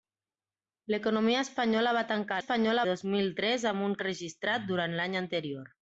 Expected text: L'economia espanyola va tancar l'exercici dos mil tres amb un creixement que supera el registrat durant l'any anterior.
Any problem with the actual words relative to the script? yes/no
yes